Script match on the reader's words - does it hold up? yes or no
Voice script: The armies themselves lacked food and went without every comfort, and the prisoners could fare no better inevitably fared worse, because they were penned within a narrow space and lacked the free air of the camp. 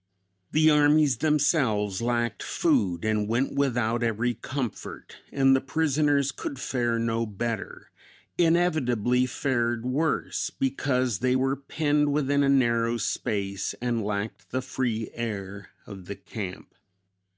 yes